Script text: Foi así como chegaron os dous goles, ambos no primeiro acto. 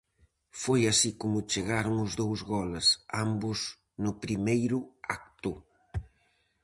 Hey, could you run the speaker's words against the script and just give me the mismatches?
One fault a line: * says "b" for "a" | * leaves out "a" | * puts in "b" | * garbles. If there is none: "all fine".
all fine